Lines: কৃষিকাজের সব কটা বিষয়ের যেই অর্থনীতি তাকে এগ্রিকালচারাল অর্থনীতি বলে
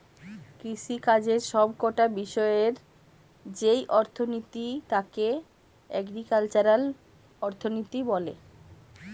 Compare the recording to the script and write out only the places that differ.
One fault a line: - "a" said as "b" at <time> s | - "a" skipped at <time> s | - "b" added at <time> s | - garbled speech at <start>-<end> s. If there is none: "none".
none